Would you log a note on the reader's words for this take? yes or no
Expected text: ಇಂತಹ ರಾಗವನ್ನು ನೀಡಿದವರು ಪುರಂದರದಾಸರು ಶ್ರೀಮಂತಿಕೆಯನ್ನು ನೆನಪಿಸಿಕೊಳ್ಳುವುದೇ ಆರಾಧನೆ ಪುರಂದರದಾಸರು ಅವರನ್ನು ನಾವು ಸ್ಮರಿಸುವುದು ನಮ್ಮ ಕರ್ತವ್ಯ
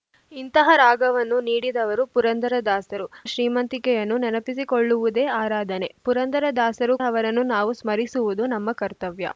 no